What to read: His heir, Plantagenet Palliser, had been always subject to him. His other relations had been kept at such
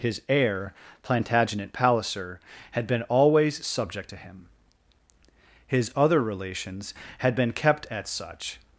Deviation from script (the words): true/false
false